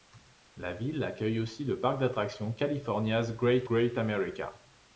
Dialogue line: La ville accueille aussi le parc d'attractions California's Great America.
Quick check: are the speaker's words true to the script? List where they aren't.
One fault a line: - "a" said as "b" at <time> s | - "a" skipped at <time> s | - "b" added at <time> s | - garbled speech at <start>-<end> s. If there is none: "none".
- "Great" added at 3.6 s